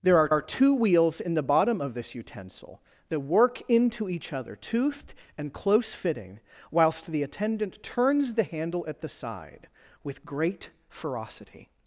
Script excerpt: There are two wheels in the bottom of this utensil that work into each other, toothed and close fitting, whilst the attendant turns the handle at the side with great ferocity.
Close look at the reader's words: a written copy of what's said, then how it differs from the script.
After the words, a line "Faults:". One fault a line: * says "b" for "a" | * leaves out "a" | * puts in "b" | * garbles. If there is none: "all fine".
There are are two wheels in the bottom of this utensil that work into each other, toothed and close fitting, whilst the attendant turns the handle at the side with great ferocity.
Faults:
* puts in "are"